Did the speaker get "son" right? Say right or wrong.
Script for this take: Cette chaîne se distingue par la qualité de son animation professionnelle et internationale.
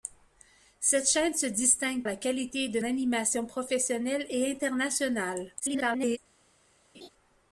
wrong